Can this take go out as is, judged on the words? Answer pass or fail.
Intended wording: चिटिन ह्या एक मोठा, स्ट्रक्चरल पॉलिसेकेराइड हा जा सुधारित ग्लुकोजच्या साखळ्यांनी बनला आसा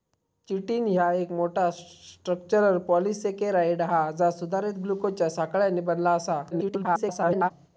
fail